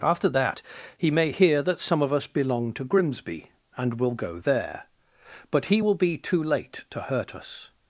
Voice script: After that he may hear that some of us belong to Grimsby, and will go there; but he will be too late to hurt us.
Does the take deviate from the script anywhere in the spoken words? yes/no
no